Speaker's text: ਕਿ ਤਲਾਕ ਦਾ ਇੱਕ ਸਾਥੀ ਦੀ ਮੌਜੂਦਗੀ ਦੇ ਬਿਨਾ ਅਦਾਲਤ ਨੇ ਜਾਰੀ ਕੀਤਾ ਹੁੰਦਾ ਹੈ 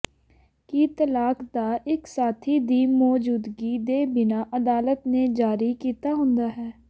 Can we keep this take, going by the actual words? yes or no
yes